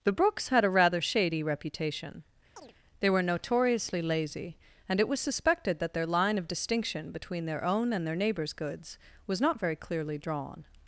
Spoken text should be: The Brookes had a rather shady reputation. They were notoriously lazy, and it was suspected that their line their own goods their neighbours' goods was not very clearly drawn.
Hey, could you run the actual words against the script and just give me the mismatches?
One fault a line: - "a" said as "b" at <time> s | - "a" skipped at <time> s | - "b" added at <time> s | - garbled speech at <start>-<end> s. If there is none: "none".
- "of distinction between" added at 6.4 s
- "goods" said as "and" at 7.9 s